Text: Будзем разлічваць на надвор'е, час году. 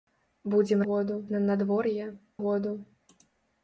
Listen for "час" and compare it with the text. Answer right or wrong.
wrong